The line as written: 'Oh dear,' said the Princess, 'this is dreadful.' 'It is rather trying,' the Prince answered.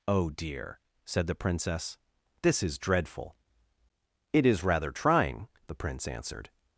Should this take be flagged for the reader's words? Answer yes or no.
no